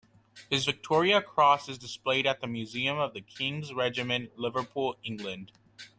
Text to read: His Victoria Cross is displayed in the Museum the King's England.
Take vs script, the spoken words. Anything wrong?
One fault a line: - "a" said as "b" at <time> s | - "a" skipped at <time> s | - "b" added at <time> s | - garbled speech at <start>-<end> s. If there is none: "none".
- "in" said as "at" at 2.2 s
- "of" added at 3.0 s
- "Regiment Liverpool" added at 3.7 s